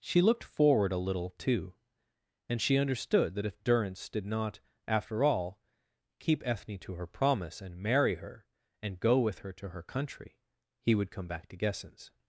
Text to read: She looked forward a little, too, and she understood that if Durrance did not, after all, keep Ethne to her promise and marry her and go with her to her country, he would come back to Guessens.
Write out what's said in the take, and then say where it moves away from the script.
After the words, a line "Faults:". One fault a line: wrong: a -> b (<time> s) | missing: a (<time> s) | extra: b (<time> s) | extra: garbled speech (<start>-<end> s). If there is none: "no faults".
She looked forward a little, too, and she understood that if Durrance did not, after all, keep Ethne to her promise and marry her and go with her to her country, he would come back to Guessens.
Faults:
no faults